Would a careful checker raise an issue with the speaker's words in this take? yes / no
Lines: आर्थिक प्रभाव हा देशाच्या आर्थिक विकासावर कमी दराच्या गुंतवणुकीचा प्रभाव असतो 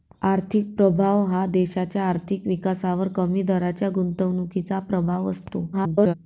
yes